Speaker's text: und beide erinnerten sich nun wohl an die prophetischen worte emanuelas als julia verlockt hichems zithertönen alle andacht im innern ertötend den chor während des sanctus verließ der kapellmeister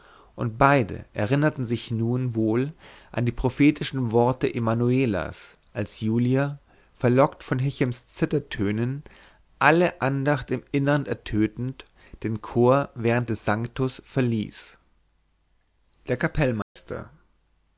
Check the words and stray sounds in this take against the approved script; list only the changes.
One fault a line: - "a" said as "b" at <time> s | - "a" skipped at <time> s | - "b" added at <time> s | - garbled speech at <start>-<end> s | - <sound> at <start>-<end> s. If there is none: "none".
- "von" added at 7.4 s
- dropout at 16.6-16.8 s